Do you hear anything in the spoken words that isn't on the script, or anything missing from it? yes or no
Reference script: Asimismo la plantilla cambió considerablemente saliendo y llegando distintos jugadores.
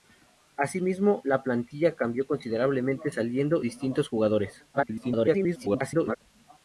yes